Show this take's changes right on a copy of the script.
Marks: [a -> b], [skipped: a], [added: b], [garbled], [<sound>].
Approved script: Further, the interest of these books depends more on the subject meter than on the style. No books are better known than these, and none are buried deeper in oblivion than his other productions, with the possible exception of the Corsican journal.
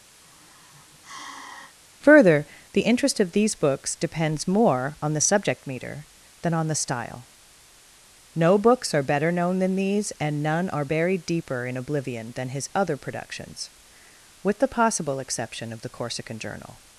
[sigh] Further, the interest of these books depends more on the subject meter than on the style. No books are better known than these, and none are buried deeper in oblivion than his other productions, with the possible exception of the Corsican journal.